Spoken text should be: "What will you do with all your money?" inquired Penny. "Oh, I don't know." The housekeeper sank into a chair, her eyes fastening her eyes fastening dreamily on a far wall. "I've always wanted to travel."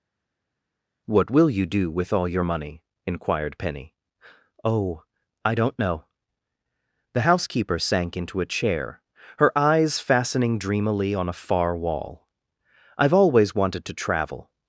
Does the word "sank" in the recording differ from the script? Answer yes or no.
no